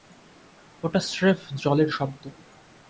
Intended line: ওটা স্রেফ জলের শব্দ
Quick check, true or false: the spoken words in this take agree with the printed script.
true